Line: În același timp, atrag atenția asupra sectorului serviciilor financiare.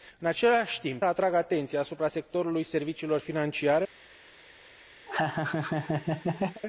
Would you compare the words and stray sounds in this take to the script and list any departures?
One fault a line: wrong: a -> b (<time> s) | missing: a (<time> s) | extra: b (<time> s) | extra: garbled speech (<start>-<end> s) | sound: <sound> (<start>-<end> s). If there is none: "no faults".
sound: laugh (5.1-6.6 s)